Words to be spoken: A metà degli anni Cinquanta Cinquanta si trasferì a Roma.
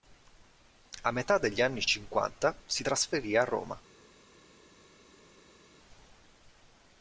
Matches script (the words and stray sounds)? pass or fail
fail